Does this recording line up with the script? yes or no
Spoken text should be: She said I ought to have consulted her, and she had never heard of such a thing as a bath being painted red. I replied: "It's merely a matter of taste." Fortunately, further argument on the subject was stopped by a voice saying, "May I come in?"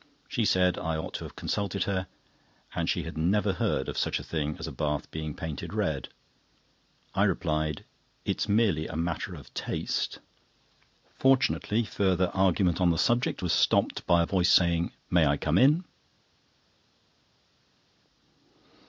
yes